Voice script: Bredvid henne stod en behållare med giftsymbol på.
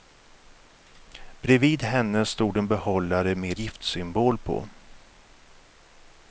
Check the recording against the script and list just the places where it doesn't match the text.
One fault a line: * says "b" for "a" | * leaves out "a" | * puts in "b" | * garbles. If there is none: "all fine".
all fine